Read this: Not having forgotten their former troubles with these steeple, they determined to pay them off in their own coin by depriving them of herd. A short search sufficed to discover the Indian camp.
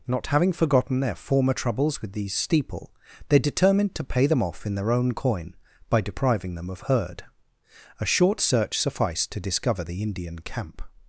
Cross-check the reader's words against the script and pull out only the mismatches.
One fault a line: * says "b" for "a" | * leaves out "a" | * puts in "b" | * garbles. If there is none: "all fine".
all fine